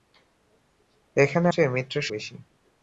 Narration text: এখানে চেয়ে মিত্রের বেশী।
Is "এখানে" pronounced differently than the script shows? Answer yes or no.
no